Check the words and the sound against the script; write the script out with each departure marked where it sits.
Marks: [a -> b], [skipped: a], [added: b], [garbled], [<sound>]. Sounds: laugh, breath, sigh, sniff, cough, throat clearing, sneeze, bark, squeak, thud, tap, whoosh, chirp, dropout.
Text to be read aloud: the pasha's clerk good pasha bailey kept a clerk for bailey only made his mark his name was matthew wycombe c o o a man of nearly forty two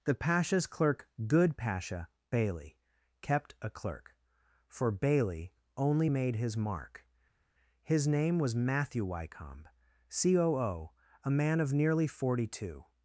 the pasha's clerk good pasha bailey kept a clerk for bailey only made his mark his name was matthew wycombe c o o a man of nearly forty two